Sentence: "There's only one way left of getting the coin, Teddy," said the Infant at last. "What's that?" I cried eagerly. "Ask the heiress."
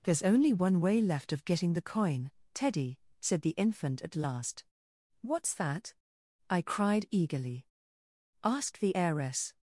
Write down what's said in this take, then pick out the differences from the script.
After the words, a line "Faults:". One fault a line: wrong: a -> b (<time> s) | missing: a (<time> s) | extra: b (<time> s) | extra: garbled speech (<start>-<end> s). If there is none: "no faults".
"There's only one way left of getting the coin, Teddy," said the Infant at last. "What's that?" I cried eagerly. "Ask the heiress."
Faults:
no faults